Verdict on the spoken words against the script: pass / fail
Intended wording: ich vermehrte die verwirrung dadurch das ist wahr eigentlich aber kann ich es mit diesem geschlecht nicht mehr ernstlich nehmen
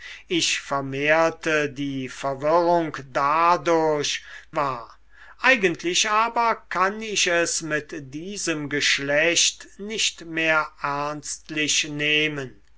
fail